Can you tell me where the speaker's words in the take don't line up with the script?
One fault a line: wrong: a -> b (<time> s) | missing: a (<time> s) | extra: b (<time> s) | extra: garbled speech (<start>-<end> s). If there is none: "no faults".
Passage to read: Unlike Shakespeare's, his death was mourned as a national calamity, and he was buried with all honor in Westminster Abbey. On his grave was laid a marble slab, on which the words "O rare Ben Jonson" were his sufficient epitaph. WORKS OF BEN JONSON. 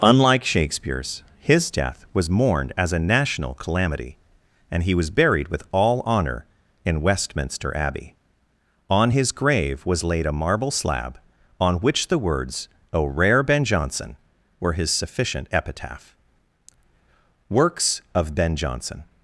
no faults